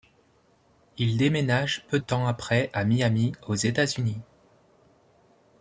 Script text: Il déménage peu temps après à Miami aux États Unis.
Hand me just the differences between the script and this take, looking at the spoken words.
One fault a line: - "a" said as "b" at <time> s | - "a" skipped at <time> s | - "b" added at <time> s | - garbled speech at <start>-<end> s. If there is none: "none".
none